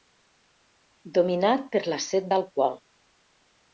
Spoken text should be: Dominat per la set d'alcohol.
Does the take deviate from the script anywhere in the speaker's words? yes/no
no